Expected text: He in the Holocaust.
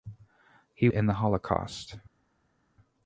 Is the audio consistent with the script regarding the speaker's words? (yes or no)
yes